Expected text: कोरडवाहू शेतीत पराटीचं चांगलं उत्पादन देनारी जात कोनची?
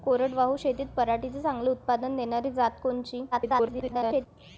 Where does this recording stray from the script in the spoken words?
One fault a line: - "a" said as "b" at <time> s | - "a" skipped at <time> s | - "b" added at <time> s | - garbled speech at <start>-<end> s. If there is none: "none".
- garbled speech at 3.3-4.3 s